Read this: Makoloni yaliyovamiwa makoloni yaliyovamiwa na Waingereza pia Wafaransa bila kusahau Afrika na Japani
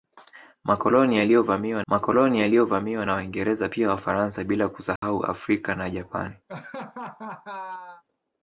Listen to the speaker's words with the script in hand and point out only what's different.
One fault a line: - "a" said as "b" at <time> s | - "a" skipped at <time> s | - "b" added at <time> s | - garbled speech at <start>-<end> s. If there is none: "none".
none